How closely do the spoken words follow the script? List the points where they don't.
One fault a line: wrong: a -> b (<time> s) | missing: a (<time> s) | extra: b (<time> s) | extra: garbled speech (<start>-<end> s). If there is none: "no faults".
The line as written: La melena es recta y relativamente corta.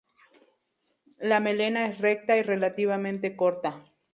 no faults